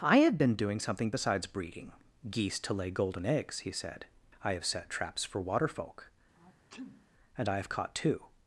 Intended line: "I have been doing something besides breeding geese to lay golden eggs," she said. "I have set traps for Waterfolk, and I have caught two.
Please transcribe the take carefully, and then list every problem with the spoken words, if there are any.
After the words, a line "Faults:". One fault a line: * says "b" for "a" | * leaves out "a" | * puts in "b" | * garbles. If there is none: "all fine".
"I have been doing something besides breeding geese to lay golden eggs," he said. "I have set traps for Waterfolk, and I have caught two.
Faults:
* says "he" for "she"